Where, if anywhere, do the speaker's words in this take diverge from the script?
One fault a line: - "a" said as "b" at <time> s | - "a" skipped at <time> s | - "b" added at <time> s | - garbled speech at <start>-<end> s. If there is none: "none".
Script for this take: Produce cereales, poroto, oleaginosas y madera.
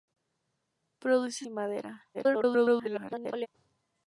- "cereales poroto oleaginosas" skipped at 1.4 s
- garbled speech at 2.1-3.5 s